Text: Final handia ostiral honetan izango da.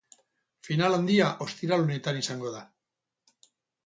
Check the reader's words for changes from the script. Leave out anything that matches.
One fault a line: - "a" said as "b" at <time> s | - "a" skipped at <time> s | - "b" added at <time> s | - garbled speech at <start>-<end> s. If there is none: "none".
none